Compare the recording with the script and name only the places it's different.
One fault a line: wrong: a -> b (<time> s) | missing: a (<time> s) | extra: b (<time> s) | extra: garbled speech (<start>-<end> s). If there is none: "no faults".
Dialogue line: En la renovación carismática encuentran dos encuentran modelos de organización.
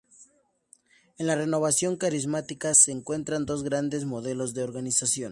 extra: se (2.7 s)
wrong: encuentran -> grandes (3.6 s)